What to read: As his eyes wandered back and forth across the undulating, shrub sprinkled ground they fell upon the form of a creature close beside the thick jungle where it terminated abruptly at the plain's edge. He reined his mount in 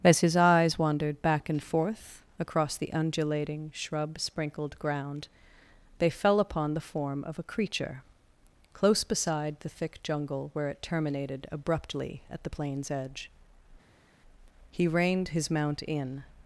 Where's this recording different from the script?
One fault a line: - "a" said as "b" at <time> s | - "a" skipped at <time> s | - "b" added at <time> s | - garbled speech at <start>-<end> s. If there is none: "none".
none